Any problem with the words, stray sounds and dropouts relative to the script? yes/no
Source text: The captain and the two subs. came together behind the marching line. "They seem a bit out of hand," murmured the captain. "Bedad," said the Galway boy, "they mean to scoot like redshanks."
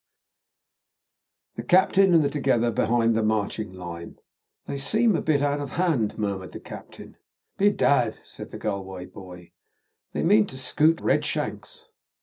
yes